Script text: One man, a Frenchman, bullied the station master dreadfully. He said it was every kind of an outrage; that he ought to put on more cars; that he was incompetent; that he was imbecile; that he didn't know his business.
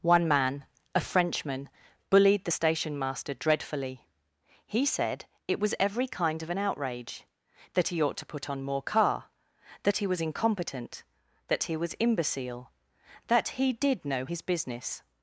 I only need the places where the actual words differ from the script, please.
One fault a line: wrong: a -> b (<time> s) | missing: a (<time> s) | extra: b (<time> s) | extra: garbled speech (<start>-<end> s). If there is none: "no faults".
wrong: cars -> car (8.8 s)
wrong: didn't -> did (13.7 s)